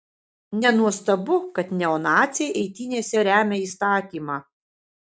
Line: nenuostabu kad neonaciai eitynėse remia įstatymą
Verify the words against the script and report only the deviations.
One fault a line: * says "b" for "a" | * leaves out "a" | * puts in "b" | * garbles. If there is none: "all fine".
all fine